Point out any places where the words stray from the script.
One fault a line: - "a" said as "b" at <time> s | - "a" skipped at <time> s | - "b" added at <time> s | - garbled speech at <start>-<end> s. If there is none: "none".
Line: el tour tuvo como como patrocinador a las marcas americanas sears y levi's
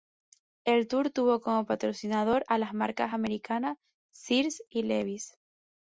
- "como" skipped at 1.7 s